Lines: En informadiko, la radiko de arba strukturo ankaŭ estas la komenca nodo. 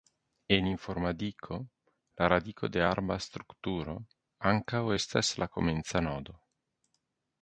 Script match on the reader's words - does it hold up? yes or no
yes